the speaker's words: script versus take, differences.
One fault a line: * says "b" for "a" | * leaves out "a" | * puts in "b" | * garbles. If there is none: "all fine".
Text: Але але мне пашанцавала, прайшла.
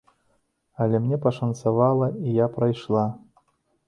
* leaves out "але"
* puts in "і я"